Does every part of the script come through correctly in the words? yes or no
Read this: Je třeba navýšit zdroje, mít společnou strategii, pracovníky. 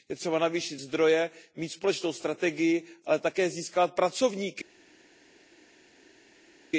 no